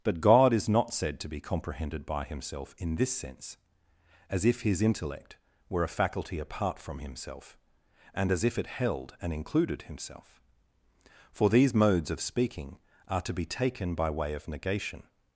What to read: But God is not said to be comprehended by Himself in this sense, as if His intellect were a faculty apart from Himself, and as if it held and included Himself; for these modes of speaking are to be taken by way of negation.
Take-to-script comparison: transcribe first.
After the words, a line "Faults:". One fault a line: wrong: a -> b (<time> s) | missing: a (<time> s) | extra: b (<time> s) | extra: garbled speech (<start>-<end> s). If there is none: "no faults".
But God is not said to be comprehended by Himself in this sense, as if His intellect were a faculty apart from Himself, and as if it held and included Himself; for these modes of speaking are to be taken by way of negation.
Faults:
no faults